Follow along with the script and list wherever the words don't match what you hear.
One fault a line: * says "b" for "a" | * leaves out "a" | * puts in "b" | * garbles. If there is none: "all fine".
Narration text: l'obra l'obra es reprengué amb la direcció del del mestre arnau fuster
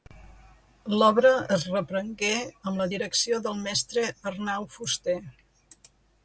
* leaves out "l'obra"
* leaves out "del"